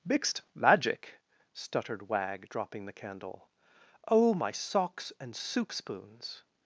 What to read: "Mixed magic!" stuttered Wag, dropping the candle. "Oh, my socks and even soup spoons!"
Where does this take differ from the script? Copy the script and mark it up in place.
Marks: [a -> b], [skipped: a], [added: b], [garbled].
"Mixed magic!" stuttered Wag, dropping the candle. "Oh, my socks and [skipped: even] soup spoons!"